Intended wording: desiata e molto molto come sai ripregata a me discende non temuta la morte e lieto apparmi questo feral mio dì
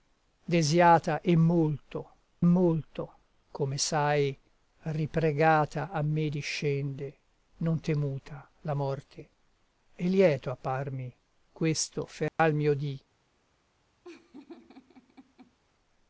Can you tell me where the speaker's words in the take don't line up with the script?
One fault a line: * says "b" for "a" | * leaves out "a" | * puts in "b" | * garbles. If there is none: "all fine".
all fine